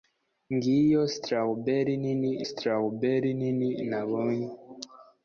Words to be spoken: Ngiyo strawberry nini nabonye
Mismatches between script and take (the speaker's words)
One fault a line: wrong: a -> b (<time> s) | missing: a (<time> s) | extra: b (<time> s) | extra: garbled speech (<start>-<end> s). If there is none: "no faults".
extra: strawberry nini (2.5 s)